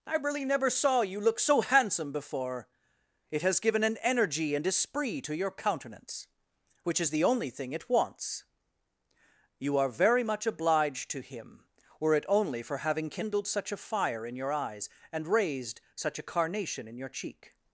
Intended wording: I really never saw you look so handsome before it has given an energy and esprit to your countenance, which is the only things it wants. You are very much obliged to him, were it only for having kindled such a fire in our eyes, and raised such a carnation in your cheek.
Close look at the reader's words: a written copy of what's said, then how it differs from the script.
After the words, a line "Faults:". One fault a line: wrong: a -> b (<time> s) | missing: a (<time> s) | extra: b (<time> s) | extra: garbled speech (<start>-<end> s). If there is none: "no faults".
I really never saw you look so handsome before it has given an energy and esprit to your countenance, which is the only thing it wants. You are very much obliged to him, were it only for having kindled such a fire in your eyes, and raised such a carnation in your cheek.
Faults:
wrong: things -> thing (7.5 s)
wrong: our -> your (14.4 s)